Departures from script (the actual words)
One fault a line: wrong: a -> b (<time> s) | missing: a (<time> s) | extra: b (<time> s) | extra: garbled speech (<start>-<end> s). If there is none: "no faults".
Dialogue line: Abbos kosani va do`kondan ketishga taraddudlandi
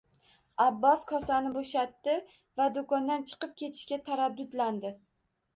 extra: bo`shatdi (1.6 s)
extra: chiqib (3.3 s)